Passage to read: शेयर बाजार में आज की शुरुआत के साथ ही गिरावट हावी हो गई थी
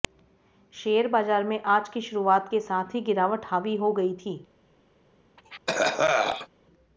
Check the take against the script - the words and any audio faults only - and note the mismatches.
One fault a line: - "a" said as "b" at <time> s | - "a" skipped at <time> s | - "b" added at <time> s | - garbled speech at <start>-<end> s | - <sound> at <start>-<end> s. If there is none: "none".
- cough at 5.4-6.5 s